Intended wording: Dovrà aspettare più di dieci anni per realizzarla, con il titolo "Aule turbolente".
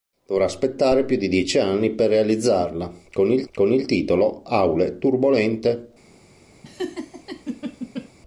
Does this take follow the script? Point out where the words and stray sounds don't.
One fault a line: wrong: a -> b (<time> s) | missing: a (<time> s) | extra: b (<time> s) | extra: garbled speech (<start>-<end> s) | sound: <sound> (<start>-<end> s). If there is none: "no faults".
extra: con il (3.5 s)
sound: laugh (6.6-8.1 s)